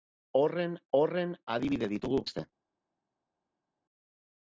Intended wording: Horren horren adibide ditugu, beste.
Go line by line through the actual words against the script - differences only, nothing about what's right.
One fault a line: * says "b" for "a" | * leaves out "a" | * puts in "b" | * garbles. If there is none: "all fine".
all fine